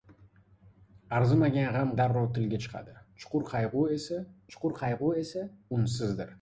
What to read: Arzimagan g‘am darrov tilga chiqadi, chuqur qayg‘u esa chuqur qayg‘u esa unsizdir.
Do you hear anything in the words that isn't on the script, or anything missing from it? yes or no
no